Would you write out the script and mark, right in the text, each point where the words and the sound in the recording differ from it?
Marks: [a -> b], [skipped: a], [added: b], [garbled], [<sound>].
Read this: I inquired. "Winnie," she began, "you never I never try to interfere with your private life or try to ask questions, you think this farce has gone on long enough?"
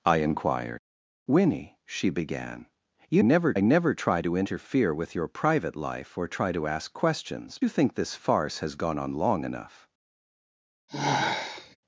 I inquired. "Winnie," she began, "you never I never try to interfere with your private life or try to ask questions, you think this farce has gone on long enough?" [sigh]